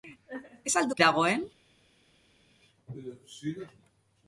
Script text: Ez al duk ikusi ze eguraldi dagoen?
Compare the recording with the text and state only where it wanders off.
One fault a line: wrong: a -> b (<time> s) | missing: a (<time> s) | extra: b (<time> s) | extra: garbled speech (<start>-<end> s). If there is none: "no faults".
missing: ikusi ze eguraldi (1.0 s)